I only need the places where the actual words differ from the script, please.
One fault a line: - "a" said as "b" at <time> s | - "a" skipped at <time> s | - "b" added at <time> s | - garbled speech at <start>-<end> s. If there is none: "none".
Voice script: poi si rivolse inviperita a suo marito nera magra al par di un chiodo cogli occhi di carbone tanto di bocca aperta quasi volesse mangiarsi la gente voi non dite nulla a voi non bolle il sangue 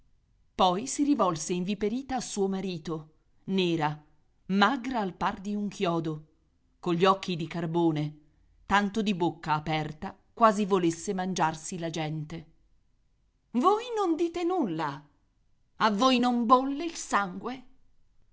none